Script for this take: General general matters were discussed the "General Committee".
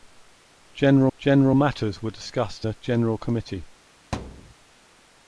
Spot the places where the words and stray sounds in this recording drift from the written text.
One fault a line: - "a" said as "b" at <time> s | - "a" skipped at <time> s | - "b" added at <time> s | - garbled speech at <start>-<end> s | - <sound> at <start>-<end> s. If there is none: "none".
- thud at 4.1-4.5 s